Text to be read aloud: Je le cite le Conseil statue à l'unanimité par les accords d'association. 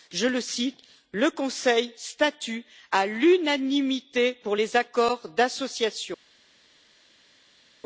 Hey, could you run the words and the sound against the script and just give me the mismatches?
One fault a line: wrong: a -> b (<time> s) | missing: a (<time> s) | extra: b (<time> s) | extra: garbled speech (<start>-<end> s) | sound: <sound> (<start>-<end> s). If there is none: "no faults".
wrong: par -> pour (4.3 s)